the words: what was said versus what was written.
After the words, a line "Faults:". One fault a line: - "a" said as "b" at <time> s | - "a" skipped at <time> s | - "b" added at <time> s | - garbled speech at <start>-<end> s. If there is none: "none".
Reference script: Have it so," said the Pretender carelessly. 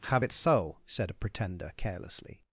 Have it so," said a Pretender carelessly.
Faults:
- "the" said as "a" at 1.1 s